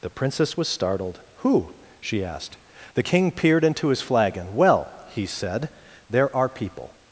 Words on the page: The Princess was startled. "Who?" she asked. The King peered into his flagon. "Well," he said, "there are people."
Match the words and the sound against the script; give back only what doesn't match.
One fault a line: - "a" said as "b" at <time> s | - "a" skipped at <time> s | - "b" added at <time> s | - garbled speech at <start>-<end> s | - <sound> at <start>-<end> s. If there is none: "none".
none